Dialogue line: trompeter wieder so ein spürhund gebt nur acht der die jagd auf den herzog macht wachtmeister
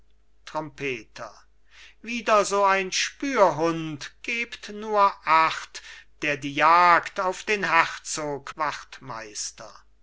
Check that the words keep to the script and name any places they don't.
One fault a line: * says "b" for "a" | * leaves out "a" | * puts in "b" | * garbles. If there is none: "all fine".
* leaves out "macht"